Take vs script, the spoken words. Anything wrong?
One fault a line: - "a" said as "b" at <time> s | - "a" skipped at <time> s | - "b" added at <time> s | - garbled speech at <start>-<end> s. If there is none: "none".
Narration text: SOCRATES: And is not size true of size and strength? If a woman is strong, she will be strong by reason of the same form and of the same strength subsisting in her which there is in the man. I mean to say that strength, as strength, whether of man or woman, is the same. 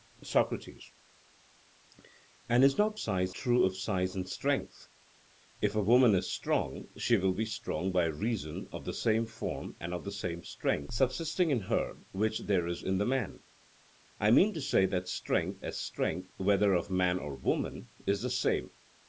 none